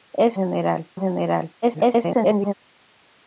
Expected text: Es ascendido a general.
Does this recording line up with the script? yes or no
no